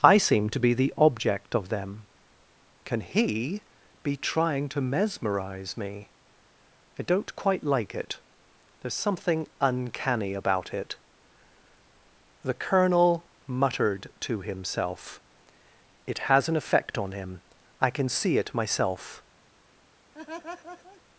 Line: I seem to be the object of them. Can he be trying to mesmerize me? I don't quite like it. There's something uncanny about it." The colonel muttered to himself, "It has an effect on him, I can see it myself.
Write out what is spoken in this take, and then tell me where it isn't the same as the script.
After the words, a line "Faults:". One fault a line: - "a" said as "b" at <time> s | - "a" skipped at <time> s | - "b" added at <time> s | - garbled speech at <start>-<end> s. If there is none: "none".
I seem to be the object of them. Can he be trying to mesmerize me? I don't quite like it. There's something uncanny about it." The colonel muttered to himself, "It has an effect on him, I can see it myself.
Faults:
none